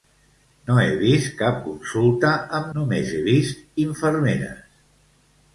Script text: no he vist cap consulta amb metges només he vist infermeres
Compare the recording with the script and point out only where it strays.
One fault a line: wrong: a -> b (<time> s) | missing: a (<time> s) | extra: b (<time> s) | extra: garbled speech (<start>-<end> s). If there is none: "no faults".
missing: metges (2.7 s)